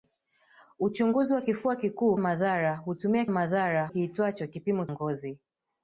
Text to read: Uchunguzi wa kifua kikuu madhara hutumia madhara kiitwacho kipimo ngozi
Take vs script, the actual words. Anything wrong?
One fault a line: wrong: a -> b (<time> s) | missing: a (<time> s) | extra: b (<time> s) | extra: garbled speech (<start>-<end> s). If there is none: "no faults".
no faults